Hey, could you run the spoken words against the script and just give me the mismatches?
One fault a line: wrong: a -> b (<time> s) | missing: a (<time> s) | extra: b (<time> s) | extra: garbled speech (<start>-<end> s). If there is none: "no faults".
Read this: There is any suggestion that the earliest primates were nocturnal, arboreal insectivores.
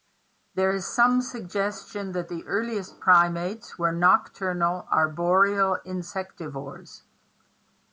wrong: any -> some (0.9 s)